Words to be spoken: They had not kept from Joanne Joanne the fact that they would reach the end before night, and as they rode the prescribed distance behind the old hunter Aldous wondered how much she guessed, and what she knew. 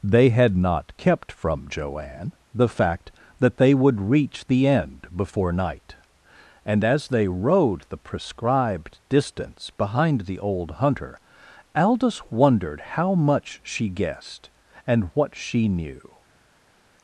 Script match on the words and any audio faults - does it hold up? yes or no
no